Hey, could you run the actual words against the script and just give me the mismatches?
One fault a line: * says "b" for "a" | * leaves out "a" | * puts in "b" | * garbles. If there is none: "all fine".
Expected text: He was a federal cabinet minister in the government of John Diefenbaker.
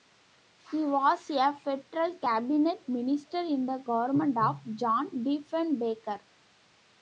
all fine